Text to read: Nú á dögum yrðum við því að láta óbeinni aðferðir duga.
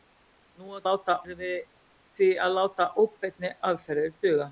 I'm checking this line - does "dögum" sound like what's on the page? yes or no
no